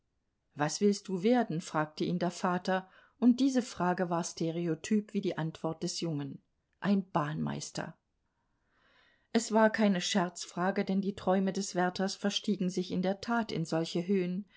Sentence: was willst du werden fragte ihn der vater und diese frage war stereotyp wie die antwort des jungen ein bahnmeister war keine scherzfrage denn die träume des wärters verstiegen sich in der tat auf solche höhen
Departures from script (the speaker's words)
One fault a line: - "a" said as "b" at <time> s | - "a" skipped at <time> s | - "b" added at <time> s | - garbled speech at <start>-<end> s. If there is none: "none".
- "es" added at 9.3 s
- "auf" said as "in" at 13.5 s